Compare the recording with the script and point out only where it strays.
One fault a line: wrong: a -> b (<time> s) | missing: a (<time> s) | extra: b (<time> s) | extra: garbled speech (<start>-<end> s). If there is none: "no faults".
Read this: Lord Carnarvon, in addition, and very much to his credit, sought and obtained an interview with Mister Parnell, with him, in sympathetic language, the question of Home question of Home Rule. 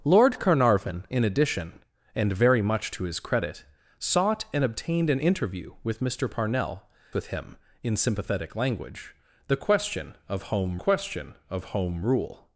no faults